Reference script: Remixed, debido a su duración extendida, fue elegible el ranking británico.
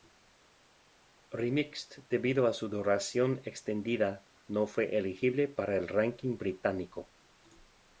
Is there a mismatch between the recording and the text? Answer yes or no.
yes